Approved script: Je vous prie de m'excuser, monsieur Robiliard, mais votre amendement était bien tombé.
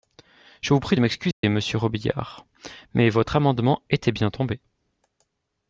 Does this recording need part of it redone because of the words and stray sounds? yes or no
yes